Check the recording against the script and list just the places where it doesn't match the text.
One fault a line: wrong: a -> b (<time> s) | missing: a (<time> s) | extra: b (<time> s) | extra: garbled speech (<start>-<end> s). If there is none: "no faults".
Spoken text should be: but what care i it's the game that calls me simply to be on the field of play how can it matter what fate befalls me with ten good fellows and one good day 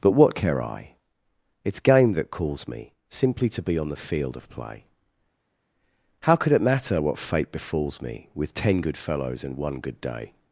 missing: the (1.8 s)
wrong: can -> could (6.4 s)